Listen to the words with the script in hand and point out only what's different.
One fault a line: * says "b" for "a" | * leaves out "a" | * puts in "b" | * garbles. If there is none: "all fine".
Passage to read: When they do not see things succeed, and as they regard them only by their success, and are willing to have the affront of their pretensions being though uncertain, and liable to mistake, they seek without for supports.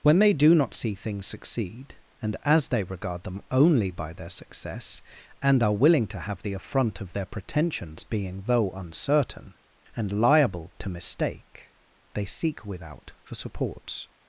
all fine